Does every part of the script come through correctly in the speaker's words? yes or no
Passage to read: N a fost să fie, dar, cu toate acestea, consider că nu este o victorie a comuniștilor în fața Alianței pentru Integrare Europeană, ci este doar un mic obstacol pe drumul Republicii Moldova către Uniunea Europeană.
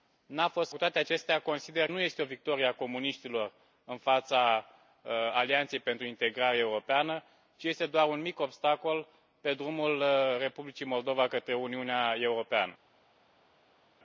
no